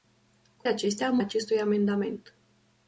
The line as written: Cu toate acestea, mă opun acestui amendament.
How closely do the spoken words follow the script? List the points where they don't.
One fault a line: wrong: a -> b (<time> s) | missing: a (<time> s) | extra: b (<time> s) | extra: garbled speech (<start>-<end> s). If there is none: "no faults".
missing: toate (0.7 s)
missing: opun (1.2 s)